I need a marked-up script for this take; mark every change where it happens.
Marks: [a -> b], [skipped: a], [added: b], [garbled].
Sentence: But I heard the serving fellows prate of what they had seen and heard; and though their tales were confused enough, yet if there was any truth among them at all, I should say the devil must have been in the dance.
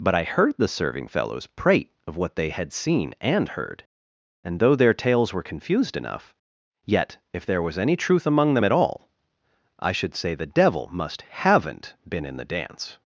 But I heard the serving fellows prate of what they had seen and heard; and though their tales were confused enough, yet if there was any truth among them at all, I should say the devil must [have -> haven't] been in the dance.